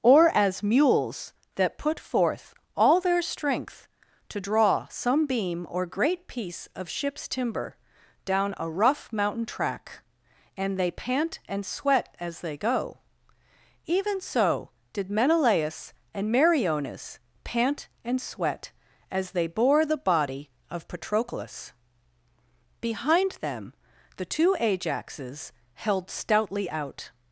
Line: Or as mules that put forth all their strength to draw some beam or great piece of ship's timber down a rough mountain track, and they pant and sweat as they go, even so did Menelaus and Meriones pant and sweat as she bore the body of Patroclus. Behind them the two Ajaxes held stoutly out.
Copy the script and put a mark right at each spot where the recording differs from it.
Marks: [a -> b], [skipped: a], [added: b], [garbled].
Or as mules that put forth all their strength to draw some beam or great piece of ship's timber down a rough mountain track, and they pant and sweat as they go, even so did Menelaus and Meriones pant and sweat as [she -> they] bore the body of Patroclus. Behind them the two Ajaxes held stoutly out.